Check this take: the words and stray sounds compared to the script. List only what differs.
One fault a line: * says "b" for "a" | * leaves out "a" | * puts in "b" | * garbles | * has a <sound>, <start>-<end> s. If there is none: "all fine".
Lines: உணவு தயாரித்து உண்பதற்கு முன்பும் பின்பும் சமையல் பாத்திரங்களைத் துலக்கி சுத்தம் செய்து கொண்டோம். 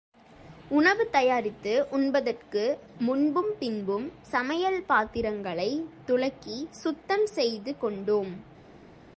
all fine